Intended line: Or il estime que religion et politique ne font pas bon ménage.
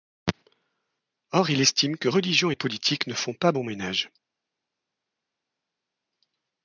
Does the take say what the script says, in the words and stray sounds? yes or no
yes